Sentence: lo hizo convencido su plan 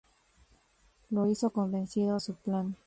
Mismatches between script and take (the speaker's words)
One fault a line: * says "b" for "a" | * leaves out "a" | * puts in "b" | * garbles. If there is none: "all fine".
all fine